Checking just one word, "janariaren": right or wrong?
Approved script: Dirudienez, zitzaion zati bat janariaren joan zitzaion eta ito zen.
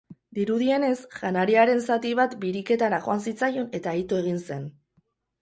wrong